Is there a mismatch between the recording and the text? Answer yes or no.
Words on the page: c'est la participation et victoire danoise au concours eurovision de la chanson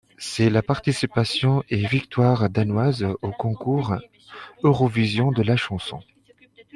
no